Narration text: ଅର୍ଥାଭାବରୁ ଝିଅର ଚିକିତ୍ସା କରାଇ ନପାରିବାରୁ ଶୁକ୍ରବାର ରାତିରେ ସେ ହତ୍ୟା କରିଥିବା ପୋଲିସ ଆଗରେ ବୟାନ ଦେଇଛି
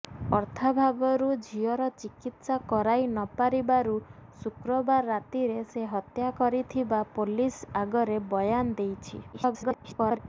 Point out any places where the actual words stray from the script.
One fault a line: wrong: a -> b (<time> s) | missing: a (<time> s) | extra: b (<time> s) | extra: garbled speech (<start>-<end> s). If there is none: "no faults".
extra: garbled speech (9.3-10.2 s)